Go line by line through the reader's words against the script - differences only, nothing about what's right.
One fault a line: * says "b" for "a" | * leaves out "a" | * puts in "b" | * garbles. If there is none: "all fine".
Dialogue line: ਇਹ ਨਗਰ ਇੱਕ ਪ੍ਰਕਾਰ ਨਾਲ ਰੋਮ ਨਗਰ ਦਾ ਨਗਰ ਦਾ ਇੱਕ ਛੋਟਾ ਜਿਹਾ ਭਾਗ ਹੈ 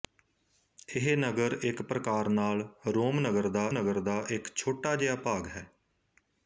all fine